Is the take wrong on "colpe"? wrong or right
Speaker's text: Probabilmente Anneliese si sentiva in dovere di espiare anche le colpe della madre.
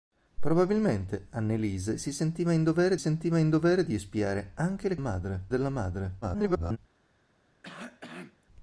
wrong